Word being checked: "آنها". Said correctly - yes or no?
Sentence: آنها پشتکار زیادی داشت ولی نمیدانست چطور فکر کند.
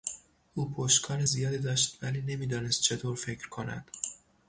no